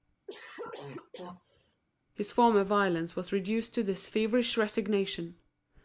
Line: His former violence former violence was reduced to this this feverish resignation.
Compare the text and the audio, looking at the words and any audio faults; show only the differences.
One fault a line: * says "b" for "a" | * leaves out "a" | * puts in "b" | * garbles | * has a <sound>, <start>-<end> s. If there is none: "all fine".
* has a cough, 0.3-1.8 s
* leaves out "former violence"
* leaves out "this"